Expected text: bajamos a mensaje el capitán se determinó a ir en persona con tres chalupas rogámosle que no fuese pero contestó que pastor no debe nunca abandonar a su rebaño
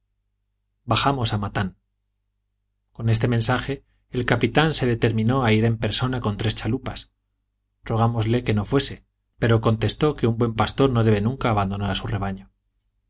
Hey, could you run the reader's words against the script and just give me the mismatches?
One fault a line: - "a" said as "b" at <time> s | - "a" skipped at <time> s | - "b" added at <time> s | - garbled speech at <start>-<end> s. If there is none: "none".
- "matan con este" added at 1.4 s
- "un buen" added at 10.3 s